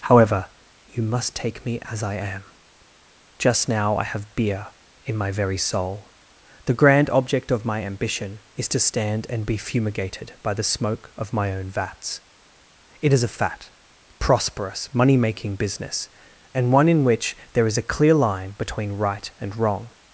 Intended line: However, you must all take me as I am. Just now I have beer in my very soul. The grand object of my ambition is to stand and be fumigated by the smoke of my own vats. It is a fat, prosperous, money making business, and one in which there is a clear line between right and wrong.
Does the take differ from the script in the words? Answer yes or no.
yes